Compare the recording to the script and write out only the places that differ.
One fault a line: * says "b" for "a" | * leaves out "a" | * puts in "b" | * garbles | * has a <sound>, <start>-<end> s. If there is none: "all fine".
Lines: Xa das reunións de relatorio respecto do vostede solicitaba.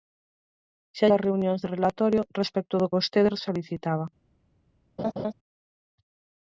* has a laugh, 5.0-5.3 s